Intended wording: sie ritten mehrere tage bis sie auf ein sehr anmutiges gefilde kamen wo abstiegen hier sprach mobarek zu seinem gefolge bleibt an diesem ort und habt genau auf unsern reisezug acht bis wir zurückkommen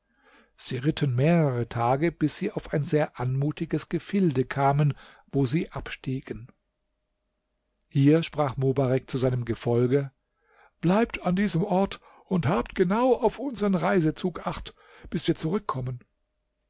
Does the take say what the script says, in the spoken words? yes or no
no